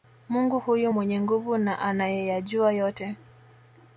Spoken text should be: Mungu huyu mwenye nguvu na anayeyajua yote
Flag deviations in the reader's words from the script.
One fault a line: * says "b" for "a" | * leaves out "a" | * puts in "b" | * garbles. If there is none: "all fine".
all fine